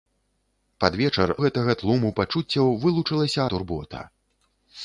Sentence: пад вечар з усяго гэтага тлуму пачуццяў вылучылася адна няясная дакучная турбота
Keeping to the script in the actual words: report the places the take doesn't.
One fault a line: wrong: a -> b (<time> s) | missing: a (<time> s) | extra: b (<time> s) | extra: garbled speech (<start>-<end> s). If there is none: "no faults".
missing: з усяго (1.3 s)
missing: адна няясная дакучная (3.4 s)